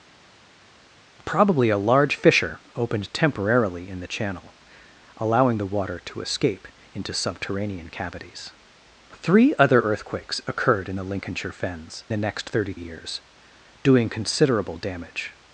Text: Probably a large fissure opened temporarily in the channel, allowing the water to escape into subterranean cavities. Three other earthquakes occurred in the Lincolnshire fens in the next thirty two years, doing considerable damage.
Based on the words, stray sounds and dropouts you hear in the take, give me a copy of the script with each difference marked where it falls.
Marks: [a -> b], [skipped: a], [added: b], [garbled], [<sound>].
Probably a large fissure opened temporarily in the channel, allowing the water to escape into subterranean cavities. Three other earthquakes occurred in the Lincolnshire fens [skipped: in] the next thirty [skipped: two] years, doing considerable damage.